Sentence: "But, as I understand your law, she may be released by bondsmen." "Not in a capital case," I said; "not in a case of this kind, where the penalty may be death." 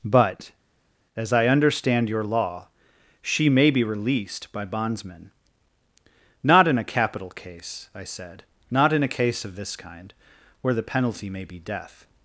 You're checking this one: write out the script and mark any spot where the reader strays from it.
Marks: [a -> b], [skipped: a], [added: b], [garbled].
"But, as I understand your law, she may be released by bondsmen." "Not in a capital case," I said; "not in a case of this kind, where the penalty may be death."